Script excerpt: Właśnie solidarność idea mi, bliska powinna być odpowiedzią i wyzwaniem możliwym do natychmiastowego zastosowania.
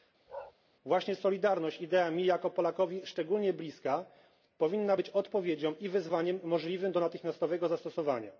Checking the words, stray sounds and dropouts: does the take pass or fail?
fail